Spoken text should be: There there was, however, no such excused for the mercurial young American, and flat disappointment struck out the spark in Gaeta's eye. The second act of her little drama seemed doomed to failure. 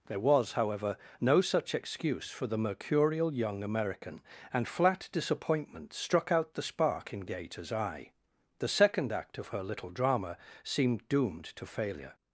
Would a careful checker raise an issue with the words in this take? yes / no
yes